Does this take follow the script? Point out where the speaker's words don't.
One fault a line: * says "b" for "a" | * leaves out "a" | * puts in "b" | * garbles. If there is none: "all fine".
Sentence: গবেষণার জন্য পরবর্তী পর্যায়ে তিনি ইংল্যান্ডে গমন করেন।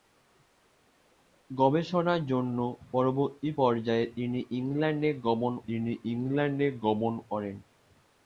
* puts in "তিনি ইংল্যান্ডে গমন"